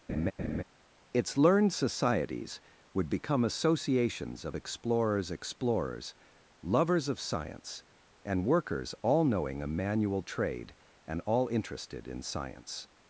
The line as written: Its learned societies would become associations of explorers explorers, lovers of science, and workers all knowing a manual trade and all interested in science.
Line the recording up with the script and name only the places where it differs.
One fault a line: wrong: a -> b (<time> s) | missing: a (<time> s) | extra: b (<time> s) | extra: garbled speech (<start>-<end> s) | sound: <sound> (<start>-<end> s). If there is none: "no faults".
sound: laugh (0.1-0.6 s)